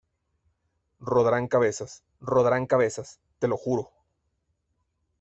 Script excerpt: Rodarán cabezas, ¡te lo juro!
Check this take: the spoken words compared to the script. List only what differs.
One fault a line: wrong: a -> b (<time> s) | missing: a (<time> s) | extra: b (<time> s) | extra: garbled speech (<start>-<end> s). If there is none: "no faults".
extra: rodarán cabezas (2.2 s)